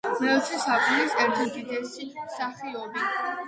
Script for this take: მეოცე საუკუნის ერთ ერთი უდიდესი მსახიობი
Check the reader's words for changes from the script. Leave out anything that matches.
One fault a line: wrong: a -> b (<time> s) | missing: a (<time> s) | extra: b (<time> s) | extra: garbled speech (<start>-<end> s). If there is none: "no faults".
missing: ერთი (1.4 s)